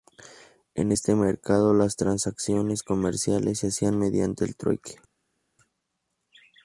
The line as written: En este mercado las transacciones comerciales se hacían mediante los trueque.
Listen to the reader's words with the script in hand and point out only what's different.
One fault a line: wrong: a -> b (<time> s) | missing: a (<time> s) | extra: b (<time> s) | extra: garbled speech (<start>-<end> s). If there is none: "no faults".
wrong: los -> el (4.4 s)